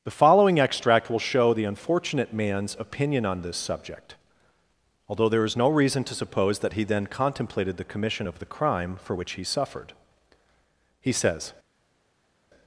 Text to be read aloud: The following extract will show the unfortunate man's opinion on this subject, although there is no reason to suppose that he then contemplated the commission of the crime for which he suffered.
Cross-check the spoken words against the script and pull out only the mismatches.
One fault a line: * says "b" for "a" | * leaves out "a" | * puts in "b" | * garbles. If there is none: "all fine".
* puts in "He says"